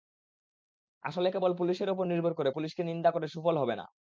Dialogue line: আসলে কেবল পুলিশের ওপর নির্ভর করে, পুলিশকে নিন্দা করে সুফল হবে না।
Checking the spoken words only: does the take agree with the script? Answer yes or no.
yes